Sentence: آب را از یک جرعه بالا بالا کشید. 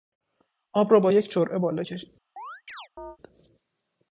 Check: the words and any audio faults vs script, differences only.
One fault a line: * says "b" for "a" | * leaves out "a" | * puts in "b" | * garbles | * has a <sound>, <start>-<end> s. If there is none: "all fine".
* says "با" for "از"
* leaves out "بالا"
* has a chirp, 2.4-3.2 s